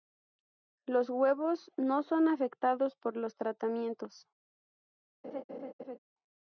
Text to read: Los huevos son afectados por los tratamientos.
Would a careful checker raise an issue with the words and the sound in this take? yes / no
yes